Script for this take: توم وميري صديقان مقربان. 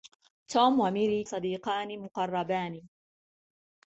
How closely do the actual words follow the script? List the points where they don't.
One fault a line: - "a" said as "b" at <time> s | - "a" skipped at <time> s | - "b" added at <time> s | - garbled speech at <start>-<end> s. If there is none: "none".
none